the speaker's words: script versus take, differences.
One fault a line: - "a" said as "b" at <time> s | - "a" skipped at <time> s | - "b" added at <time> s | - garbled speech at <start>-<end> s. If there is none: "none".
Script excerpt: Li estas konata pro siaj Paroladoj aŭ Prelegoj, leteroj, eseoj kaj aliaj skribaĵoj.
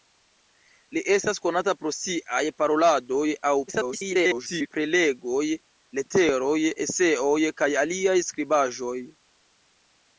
- garbled speech at 3.7-4.7 s